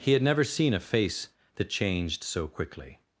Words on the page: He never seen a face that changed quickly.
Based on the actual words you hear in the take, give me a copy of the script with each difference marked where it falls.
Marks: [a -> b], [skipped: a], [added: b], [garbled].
He [added: had] never seen a face that changed [added: so] quickly.